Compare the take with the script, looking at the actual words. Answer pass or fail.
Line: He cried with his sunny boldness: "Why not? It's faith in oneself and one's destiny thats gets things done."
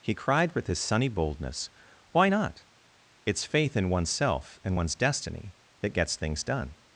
fail